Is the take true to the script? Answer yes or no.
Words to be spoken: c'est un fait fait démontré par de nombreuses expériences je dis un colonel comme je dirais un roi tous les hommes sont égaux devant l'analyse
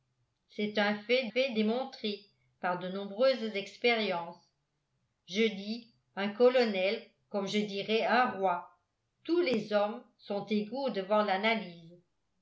yes